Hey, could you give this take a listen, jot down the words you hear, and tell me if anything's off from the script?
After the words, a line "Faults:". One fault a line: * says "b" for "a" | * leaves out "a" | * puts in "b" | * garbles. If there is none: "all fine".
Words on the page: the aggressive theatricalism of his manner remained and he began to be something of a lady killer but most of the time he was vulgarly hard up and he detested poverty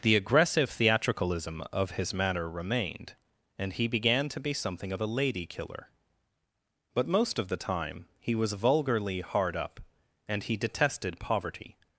the aggressive theatricalism of his manner remained and he began to be something of a lady killer but most of the time he was vulgarly hard up and he detested poverty
Faults:
all fine